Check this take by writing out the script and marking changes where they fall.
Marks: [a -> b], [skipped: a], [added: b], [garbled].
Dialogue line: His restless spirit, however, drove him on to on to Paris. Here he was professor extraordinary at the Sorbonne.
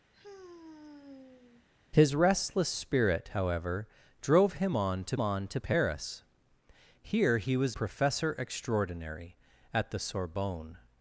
His restless spirit, however, drove him on to on to Paris. Here he was professor extraordinary at the Sorbonne.